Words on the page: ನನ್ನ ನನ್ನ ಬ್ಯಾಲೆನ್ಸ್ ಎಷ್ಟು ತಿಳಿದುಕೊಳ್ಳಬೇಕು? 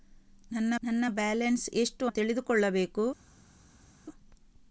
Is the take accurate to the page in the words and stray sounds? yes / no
yes